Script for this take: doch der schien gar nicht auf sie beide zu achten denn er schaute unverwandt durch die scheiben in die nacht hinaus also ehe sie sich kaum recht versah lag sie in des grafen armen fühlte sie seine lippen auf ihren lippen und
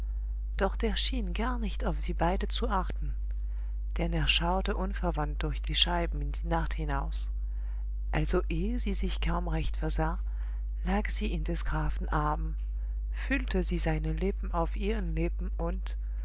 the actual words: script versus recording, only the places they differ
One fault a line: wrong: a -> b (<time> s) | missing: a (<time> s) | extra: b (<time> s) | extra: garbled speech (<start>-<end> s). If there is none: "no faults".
no faults